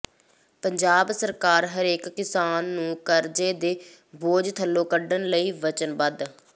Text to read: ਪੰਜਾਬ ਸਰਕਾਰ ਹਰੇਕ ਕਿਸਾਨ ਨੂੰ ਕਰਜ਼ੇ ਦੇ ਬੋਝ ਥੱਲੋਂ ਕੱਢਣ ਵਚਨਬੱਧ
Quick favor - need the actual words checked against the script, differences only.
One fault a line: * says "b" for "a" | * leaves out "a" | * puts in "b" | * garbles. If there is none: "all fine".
* puts in "ਲਈ"